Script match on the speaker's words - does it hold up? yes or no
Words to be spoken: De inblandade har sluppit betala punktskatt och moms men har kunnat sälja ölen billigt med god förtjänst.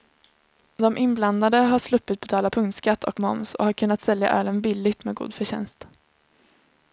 no